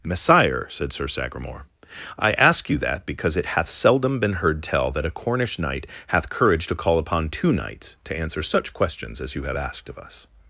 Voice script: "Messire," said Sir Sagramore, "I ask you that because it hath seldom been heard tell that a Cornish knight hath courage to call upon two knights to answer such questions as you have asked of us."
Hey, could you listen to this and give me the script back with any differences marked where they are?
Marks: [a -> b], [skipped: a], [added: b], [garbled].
"Messire," said Sir Sagramore, "I ask you that because it hath seldom been heard tell that a Cornish knight hath courage to call upon two knights to answer such questions as you have asked of us."